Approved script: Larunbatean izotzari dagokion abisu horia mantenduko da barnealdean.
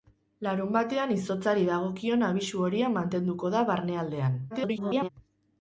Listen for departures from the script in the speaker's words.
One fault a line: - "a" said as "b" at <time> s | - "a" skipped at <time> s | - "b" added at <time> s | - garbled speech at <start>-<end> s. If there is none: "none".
- garbled speech at 4.5-5.1 s